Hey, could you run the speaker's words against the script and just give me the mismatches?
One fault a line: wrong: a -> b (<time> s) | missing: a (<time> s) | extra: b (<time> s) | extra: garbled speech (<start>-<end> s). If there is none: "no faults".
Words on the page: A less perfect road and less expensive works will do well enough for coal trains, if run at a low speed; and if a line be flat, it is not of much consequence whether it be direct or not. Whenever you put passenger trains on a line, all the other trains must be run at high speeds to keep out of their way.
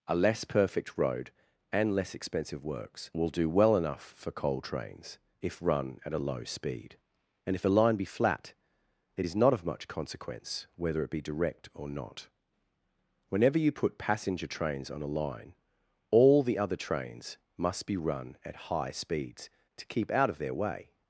no faults